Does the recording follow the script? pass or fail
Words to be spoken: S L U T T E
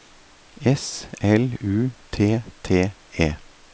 pass